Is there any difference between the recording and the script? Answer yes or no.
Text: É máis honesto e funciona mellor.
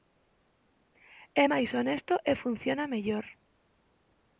no